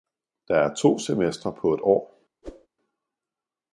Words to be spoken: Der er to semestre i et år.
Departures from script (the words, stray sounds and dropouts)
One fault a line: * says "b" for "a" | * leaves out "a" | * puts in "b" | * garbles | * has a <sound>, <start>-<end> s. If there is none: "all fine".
* says "på" for "i"
* has a whoosh, 2.4-2.7 s